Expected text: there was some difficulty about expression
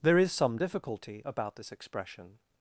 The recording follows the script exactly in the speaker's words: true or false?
false